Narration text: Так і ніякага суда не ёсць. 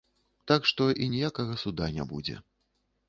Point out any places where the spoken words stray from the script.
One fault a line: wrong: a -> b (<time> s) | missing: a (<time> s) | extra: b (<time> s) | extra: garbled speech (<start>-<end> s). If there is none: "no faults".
extra: што (0.7 s)
wrong: ёсць -> будзе (2.1 s)